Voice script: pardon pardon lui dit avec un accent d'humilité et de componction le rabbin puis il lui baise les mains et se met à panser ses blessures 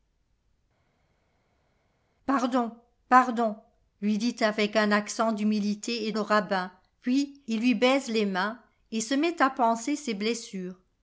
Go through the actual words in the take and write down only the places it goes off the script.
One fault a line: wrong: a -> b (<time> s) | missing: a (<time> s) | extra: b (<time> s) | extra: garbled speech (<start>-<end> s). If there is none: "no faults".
missing: de componction (6.1 s)